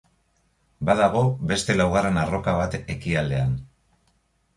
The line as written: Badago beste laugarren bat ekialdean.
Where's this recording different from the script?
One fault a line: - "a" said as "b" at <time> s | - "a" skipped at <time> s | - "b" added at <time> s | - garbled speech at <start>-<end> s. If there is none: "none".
- "arroka" added at 2.2 s